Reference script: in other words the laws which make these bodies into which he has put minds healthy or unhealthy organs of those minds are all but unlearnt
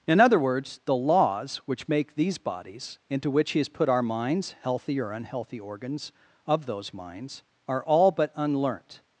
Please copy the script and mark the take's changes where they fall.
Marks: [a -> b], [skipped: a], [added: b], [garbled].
in other words the laws which make these bodies into which he has put [added: our] minds healthy or unhealthy organs of those minds are all but unlearnt